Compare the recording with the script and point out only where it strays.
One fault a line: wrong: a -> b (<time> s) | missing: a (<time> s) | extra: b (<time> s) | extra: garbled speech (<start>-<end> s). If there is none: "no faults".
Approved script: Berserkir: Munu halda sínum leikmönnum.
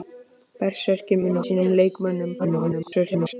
missing: halda (1.4 s)
extra: garbled speech (2.4-3.3 s)